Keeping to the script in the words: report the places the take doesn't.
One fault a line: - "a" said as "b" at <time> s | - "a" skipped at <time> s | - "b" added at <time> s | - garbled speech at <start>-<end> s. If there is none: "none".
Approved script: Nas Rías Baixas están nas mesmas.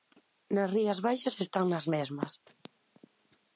none